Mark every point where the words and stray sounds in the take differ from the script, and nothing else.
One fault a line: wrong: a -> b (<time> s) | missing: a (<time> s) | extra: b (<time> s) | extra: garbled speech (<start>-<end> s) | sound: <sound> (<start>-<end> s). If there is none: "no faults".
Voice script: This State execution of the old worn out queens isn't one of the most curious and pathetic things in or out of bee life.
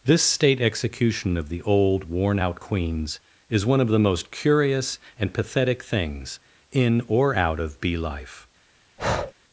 wrong: isn't -> is (3.5 s)
sound: breath (9.0-9.3 s)